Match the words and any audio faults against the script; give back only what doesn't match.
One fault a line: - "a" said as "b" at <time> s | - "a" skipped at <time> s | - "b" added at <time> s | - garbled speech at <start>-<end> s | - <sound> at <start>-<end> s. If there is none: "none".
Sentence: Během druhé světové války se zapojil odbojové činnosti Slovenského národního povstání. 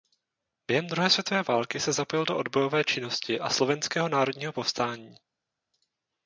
- "do" added at 2.2 s
- "a" added at 3.4 s